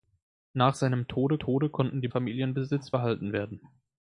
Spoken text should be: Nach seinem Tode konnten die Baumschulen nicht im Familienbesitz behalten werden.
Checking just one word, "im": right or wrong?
wrong